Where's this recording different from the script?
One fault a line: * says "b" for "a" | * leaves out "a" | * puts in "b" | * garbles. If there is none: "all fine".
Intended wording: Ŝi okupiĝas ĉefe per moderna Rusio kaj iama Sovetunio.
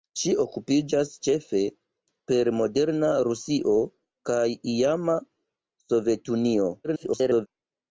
* garbles